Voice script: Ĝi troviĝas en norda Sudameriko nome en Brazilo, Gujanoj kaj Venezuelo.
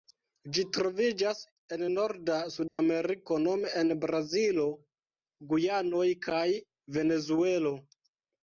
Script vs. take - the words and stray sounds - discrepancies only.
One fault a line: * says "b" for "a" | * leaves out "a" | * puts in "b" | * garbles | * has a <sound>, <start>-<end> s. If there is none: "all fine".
* has a dropout, 2.7-2.8 s